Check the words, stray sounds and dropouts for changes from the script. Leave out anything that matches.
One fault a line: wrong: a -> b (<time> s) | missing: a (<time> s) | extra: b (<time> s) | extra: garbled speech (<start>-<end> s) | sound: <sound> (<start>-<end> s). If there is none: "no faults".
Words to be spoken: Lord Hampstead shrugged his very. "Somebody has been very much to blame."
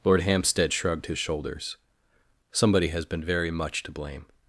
wrong: very -> shoulders (1.2 s)